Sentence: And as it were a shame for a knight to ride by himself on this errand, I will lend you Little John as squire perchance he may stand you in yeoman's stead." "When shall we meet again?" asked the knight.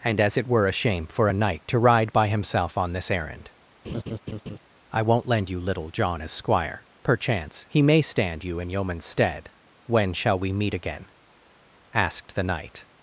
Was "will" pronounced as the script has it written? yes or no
no